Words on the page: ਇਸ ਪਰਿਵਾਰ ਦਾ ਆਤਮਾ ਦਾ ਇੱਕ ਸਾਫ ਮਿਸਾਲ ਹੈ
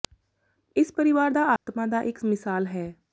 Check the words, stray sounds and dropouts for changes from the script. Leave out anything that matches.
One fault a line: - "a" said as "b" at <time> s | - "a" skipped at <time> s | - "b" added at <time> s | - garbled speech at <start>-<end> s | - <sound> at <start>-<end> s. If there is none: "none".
- dropout at 1.6-1.7 s
- "ਸਾਫ" skipped at 2.2 s